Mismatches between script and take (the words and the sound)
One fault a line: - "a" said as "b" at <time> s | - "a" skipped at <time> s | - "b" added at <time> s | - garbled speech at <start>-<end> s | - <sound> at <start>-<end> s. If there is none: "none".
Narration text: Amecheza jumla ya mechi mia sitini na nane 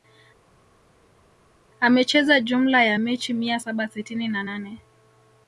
- "saba" added at 3.6 s